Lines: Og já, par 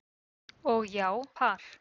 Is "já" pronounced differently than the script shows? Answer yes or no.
no